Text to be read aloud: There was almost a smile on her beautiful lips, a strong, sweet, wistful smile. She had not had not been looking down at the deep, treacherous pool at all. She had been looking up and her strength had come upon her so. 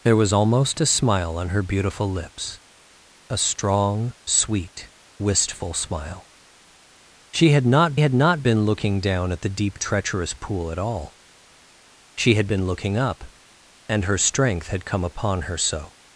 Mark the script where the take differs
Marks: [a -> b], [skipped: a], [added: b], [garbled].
There was almost a smile on her beautiful lips, a strong, sweet, wistful smile. She had not had not been looking down at the deep, treacherous pool at all. She had been looking up and her strength had come upon her so.